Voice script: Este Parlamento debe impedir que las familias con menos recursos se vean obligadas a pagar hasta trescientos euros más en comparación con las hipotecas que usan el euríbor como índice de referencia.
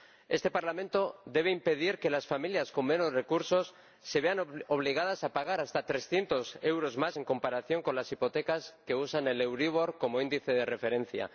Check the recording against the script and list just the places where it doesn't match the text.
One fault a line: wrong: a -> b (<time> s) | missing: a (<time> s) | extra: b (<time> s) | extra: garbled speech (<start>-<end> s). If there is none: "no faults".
no faults